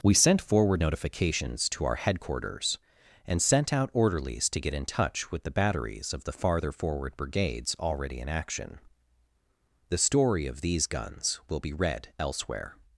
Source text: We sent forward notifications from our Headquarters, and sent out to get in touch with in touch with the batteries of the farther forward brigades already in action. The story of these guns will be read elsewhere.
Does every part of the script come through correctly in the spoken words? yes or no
no